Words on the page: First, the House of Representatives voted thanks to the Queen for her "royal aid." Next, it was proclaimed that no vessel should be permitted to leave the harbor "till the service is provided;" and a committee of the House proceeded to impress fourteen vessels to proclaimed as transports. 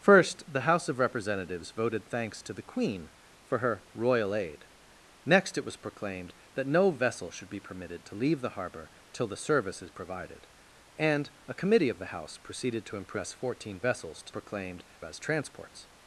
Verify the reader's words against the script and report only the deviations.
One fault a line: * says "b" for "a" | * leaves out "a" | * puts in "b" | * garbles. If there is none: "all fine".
all fine